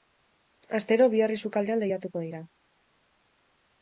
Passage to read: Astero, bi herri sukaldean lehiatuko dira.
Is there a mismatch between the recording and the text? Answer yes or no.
no